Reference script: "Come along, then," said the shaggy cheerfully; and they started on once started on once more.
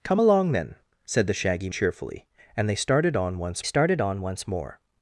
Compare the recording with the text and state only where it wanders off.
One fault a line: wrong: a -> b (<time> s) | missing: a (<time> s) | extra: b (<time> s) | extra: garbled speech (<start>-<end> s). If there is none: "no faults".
no faults